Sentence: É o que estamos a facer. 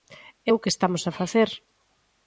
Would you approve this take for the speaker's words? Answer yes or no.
yes